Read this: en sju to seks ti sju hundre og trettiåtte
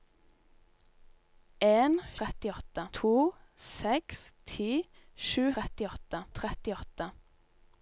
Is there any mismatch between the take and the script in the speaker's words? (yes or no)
yes